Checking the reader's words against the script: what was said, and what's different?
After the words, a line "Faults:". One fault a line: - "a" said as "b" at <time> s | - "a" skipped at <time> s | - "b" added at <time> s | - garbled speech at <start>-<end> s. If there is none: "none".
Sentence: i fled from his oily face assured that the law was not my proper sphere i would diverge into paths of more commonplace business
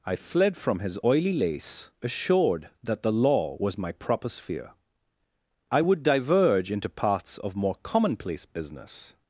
i fled from his oily lace assured that the law was my proper sphere i would diverge into paths of more commonplace business
Faults:
- "face" said as "lace" at 1.3 s
- "not" skipped at 3.8 s